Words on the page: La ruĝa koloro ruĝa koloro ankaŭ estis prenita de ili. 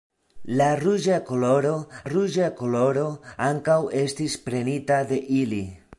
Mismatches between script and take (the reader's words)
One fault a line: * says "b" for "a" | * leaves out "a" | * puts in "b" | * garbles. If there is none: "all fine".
all fine